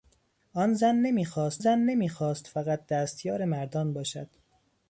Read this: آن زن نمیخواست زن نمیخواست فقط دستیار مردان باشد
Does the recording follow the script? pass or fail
pass